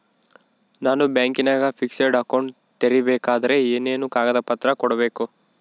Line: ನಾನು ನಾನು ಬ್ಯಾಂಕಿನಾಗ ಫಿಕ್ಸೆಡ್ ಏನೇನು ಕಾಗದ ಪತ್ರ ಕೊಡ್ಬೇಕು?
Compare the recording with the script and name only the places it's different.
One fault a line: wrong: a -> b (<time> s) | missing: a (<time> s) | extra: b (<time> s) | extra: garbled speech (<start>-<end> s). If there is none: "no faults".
missing: ನಾನು (1.0 s)
extra: ಅಕೌಂಟ್ ತೆರಿಬೇಕಾದರೆ (2.2 s)